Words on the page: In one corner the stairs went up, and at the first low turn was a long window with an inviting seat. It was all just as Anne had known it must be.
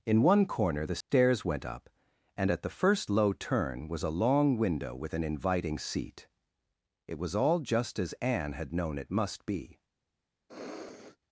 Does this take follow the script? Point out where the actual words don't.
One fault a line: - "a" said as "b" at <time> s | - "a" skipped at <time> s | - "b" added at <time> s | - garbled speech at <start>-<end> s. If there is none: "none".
none